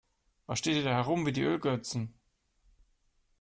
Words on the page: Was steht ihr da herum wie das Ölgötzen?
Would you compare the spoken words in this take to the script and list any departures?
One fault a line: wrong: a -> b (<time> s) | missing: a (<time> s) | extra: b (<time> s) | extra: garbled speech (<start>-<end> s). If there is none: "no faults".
wrong: das -> die (1.3 s)